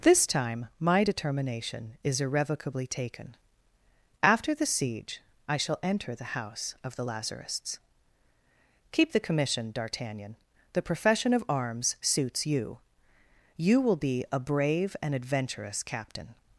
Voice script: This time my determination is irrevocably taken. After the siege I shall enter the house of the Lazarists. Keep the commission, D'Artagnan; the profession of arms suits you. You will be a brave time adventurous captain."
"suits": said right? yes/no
yes